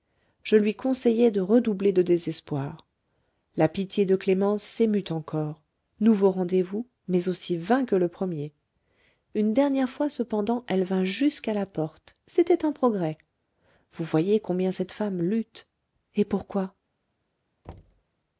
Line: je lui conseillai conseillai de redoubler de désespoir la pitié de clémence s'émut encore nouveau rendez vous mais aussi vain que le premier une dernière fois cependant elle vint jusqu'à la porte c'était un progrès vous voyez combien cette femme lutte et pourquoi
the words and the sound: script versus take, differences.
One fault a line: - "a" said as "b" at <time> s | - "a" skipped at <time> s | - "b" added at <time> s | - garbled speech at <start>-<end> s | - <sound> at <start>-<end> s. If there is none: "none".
- "conseillai" skipped at 1.3 s
- thud at 17.6-18.0 s